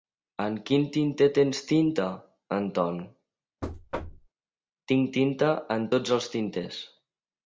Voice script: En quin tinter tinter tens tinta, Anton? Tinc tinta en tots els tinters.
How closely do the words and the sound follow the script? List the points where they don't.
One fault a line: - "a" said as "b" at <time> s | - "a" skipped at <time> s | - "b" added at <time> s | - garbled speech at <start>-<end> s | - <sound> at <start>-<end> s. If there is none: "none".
- "tinter" skipped at 1.2 s
- thud at 3.6-4.3 s